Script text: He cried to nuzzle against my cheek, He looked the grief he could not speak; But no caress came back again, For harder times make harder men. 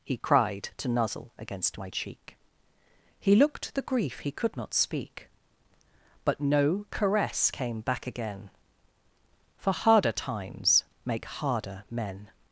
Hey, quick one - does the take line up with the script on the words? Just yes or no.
yes